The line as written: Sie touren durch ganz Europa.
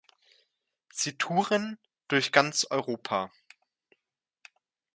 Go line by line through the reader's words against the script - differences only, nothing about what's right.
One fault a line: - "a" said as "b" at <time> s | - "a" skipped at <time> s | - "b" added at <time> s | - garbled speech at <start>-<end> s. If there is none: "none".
none